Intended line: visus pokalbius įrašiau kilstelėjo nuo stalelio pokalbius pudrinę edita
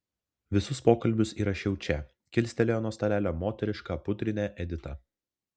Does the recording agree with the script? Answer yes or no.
no